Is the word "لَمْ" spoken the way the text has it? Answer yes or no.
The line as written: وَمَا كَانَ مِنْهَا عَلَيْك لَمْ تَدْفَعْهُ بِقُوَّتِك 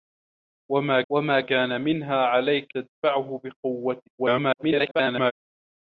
no